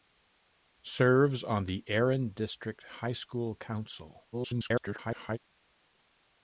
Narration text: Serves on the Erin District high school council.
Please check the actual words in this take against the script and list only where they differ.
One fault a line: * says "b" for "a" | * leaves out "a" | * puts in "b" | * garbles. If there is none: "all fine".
* garbles